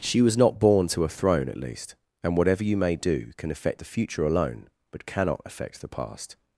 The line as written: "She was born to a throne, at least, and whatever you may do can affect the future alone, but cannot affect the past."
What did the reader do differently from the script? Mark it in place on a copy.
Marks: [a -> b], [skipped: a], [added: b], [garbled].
"She was [added: not] born to a throne, at least, and whatever you may do can affect the future alone, but cannot affect the past."